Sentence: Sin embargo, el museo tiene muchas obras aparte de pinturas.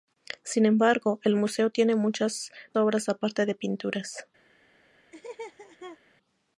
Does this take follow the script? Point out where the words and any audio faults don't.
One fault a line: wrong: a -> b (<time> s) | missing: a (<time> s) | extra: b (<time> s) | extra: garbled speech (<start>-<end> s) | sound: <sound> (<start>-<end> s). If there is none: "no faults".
sound: laugh (5.1-6.0 s)